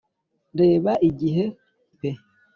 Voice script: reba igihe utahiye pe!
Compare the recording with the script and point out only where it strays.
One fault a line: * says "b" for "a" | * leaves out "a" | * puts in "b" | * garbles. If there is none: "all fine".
* leaves out "utahiye"